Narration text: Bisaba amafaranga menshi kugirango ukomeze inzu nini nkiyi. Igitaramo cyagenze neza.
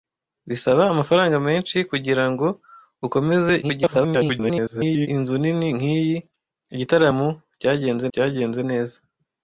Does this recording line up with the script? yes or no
no